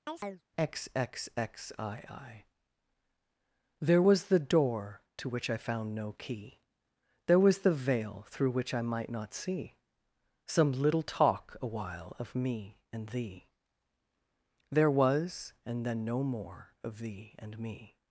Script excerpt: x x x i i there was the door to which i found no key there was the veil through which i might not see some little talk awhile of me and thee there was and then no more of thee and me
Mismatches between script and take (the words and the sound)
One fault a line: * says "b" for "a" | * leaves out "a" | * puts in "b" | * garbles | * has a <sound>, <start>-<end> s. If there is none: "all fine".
* has a chirp, 0.1-0.4 s